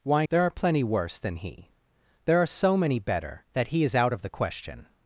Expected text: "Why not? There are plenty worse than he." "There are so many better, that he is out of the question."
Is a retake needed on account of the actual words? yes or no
yes